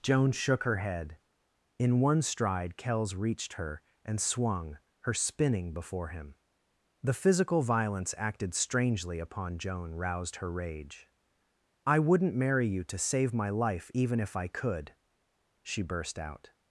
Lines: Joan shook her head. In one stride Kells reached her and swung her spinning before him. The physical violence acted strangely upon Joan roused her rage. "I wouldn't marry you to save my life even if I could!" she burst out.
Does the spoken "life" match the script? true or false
true